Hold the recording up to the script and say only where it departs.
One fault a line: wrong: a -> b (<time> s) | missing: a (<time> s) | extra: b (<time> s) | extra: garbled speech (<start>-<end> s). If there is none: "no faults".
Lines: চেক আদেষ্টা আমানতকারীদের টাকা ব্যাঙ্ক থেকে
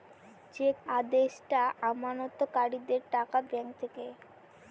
no faults